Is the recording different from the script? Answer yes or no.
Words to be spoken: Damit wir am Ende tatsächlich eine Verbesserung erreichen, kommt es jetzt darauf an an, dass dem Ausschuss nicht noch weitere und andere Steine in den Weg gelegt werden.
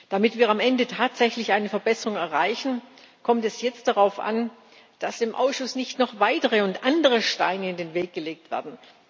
yes